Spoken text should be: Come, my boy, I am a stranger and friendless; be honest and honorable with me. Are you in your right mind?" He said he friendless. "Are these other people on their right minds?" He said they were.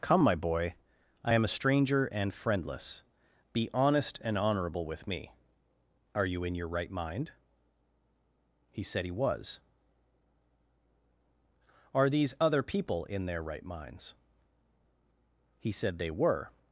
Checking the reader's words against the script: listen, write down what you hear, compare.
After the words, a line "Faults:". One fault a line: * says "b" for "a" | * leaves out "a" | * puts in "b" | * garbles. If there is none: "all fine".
Come, my boy, I am a stranger and friendless; be honest and honorable with me. Are you in your right mind?" He said he was. "Are these other people in their right minds?" He said they were.
Faults:
* says "was" for "friendless"
* says "in" for "on"